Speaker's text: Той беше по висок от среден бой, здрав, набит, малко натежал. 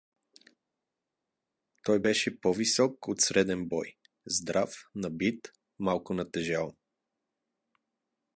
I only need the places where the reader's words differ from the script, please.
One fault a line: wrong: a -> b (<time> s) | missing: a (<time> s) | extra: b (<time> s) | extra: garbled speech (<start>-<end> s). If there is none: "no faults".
no faults